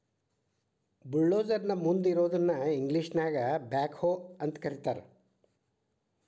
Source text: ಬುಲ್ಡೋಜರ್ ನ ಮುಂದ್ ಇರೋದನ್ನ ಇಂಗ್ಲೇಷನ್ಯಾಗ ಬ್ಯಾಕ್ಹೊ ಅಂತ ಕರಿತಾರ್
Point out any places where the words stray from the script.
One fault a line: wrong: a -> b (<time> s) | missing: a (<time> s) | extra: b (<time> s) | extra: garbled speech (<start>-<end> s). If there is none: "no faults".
no faults